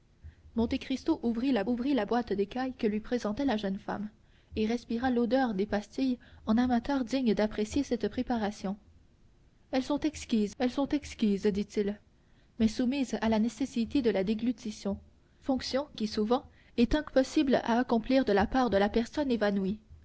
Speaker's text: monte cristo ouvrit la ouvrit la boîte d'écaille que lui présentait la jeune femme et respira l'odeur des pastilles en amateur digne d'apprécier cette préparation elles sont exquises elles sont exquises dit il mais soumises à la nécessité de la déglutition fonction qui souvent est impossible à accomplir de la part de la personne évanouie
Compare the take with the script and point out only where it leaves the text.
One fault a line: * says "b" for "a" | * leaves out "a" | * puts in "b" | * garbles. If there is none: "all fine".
all fine